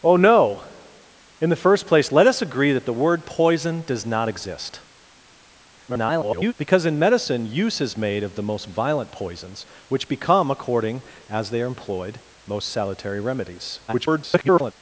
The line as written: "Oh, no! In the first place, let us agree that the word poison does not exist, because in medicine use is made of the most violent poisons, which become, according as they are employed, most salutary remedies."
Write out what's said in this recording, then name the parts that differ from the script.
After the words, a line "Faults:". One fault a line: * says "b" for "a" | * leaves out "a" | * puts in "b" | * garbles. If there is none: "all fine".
"Oh, no! In the first place, let us agree that the word poison does not exist, [garbled] because in medicine use is made of the most violent poisons, which become, according as they are employed, most salutary remedies." [garbled]
Faults:
* garbles
* garbles